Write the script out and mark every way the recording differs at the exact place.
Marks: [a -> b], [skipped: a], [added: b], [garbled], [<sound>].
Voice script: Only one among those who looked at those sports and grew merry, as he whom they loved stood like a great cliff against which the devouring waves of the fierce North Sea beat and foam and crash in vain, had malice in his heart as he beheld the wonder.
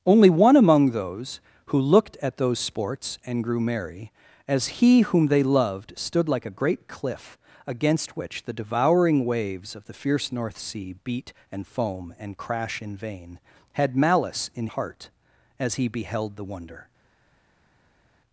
Only one among those who looked at those sports and grew merry, as he whom they loved stood like a great cliff against which the devouring waves of the fierce North Sea beat and foam and crash in vain, had malice in [skipped: his] heart as he beheld the wonder.